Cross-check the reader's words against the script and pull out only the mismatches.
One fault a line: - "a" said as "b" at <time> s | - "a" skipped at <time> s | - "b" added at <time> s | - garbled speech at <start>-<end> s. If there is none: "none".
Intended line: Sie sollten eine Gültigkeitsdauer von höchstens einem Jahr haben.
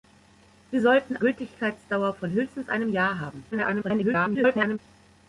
- "eine" skipped at 1.2 s
- garbled speech at 3.5-4.8 s